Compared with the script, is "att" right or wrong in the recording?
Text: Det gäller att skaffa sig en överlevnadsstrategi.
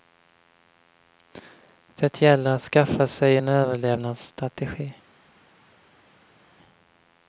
right